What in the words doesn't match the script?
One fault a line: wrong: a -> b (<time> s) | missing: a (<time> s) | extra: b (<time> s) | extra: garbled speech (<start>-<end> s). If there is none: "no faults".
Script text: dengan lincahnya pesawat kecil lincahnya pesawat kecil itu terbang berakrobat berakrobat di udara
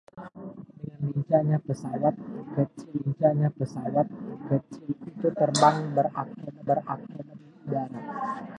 no faults